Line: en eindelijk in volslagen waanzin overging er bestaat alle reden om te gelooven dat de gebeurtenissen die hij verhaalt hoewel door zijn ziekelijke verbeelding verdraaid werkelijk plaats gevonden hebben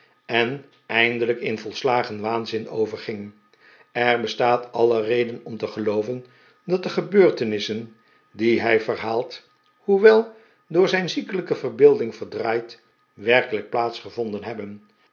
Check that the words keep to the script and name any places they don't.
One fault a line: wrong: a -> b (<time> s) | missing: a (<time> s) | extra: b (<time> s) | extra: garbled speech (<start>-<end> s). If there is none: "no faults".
no faults